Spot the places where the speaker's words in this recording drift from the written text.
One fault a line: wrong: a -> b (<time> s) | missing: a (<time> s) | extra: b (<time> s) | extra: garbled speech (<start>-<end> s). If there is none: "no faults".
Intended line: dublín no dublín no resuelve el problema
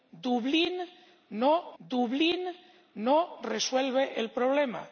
no faults